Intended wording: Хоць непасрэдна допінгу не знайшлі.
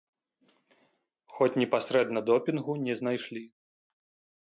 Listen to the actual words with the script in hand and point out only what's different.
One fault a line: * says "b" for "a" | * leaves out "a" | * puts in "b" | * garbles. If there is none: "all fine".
all fine